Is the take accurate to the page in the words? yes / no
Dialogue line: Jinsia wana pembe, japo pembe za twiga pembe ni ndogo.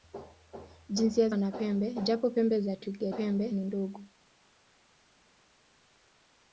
yes